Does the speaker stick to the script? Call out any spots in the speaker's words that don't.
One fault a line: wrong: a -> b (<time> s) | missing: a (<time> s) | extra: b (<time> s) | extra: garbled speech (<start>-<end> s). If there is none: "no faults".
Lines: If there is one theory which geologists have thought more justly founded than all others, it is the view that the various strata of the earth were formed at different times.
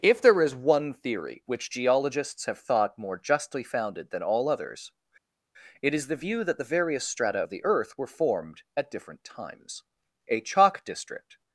extra: A chalk district (10.3 s)